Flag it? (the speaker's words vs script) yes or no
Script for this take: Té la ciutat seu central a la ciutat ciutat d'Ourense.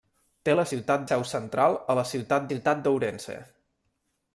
no